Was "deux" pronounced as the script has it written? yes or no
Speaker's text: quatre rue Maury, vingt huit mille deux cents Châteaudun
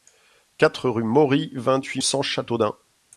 no